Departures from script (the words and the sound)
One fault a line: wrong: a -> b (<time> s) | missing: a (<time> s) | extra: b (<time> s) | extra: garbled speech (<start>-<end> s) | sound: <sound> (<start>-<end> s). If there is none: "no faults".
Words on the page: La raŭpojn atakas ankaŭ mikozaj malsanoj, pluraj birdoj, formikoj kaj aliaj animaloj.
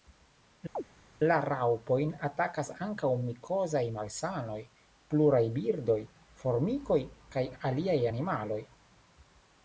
sound: chirp (0.7-0.8 s)